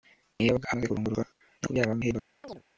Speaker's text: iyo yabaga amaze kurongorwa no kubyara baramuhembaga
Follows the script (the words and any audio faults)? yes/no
no